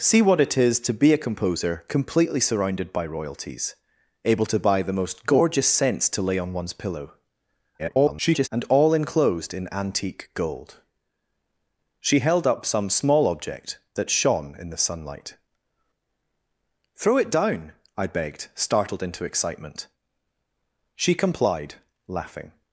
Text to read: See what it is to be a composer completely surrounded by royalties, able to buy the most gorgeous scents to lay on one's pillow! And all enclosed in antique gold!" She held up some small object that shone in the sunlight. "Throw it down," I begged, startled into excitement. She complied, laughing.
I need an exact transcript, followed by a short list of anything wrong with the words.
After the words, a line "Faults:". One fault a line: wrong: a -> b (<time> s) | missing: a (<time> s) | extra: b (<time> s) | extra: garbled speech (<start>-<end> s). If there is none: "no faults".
See what it is to be a composer completely surrounded by royalties, able to buy the most gorgeous scents to lay on one's pillow! [garbled] And all enclosed in antique gold!" She held up some small object that shone in the sunlight. "Throw it down," I begged, startled into excitement. She complied, laughing.
Faults:
extra: garbled speech (7.8-8.5 s)